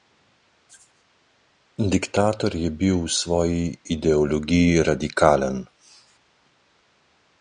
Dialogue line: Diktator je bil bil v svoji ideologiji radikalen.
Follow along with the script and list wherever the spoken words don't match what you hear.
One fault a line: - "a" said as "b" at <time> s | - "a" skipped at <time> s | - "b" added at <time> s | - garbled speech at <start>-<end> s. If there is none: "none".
- "bil" skipped at 3.0 s